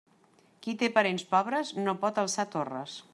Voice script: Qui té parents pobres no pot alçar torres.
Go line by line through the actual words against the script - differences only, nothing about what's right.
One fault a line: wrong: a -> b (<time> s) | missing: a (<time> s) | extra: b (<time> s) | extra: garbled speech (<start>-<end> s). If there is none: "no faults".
no faults